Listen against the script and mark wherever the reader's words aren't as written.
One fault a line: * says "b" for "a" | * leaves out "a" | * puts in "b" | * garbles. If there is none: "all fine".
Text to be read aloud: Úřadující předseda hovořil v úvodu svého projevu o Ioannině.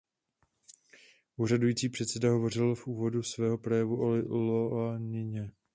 all fine